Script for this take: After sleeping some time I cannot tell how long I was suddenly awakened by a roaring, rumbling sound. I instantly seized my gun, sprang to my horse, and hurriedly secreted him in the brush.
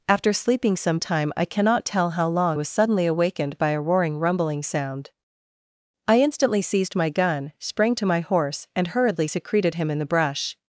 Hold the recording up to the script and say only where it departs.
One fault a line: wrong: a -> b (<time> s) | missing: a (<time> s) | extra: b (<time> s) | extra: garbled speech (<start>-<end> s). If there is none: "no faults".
missing: I (2.6 s)